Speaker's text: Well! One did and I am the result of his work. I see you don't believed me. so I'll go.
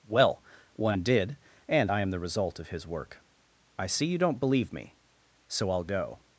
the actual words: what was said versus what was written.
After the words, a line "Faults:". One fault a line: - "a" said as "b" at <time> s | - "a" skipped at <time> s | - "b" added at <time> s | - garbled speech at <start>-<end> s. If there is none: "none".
Well! One did and I am the result of his work. I see you don't believe me. so I'll go.
Faults:
- "believed" said as "believe" at 4.4 s